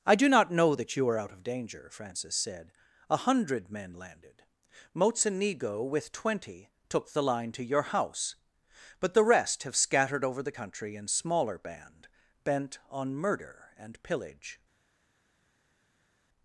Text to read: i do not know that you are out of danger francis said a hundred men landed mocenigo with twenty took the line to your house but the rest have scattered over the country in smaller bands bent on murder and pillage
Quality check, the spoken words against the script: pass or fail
fail